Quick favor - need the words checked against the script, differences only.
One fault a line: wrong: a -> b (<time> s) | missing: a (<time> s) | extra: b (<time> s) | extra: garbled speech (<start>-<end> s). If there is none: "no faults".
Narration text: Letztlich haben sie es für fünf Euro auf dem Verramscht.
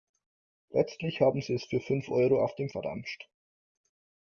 no faults